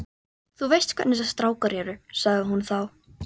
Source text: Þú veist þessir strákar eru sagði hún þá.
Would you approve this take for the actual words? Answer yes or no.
no